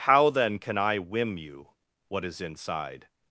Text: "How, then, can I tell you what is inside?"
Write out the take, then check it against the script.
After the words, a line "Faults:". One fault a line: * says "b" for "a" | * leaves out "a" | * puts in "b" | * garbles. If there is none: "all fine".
"How, then, can I whim you what is inside?"
Faults:
* says "whim" for "tell"